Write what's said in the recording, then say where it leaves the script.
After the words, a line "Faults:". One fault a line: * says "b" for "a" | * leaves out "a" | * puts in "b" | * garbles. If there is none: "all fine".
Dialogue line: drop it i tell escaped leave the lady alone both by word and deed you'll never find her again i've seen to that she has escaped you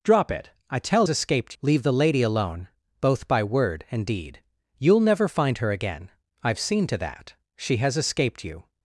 drop it i tell escaped leave the lady alone both by word and deed you'll never find her again i've seen to that she has escaped you
Faults:
all fine